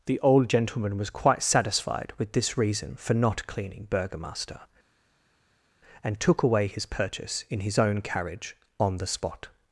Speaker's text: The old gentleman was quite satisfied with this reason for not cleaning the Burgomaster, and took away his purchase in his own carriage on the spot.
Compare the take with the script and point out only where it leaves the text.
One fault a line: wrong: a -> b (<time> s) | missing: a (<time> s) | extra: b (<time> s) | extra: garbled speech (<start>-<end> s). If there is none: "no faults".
missing: the (3.9 s)